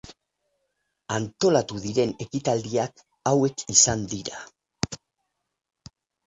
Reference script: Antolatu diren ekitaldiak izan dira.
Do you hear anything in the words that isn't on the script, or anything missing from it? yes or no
yes